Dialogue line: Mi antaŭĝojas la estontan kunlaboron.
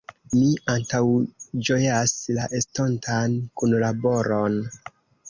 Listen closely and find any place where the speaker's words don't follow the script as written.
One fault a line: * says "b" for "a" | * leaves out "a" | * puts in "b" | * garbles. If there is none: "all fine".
all fine